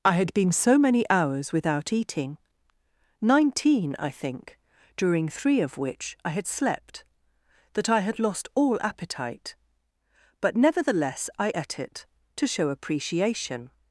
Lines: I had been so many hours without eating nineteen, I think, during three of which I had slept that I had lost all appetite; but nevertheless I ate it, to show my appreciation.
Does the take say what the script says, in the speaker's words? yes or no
no